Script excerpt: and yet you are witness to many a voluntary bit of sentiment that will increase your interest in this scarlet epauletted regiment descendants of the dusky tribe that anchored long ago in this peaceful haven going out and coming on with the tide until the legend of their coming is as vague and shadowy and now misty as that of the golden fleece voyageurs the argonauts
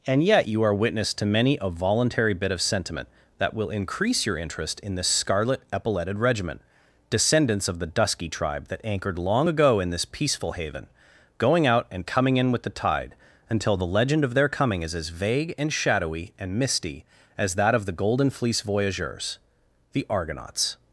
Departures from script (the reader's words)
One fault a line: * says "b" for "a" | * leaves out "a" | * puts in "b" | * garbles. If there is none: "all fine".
* says "in" for "on"
* leaves out "now"